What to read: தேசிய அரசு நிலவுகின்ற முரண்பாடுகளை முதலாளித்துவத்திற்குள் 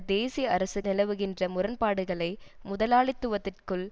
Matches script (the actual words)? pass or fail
pass